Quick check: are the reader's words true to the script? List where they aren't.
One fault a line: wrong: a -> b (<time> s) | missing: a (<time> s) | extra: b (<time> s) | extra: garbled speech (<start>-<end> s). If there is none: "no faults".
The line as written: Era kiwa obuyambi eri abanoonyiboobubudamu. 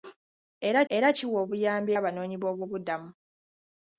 extra: era (1.0 s)
missing: eri (1.9 s)